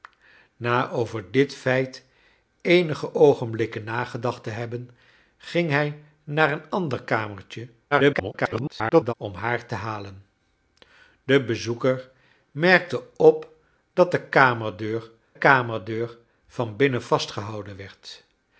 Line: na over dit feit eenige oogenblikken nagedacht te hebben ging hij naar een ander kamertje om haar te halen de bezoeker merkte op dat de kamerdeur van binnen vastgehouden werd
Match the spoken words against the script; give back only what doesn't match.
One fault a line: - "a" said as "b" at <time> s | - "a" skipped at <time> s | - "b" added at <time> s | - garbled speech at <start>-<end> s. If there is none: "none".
- garbled speech at 7.9-9.1 s
- "kamerdeur" added at 15.4 s